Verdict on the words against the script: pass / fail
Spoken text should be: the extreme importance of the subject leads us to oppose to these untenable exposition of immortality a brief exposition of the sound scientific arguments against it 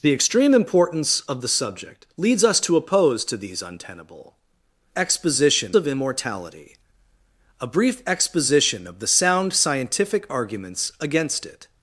pass